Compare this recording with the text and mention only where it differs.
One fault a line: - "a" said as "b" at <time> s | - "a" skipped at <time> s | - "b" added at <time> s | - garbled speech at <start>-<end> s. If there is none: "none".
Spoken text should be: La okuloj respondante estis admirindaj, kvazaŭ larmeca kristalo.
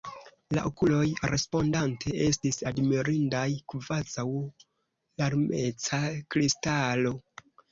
none